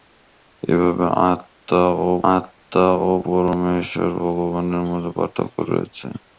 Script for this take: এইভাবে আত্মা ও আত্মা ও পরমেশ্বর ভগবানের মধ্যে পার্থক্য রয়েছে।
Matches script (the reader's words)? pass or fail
pass